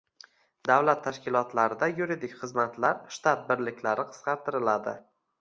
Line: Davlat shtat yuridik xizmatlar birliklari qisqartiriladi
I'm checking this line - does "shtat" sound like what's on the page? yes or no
no